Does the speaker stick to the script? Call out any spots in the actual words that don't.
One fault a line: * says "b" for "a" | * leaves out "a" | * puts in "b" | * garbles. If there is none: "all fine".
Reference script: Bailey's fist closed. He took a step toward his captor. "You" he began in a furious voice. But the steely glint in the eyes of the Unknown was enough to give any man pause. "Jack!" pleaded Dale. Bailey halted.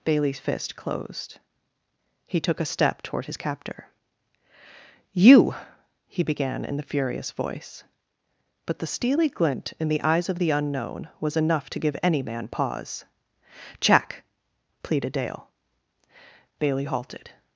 * says "the" for "a"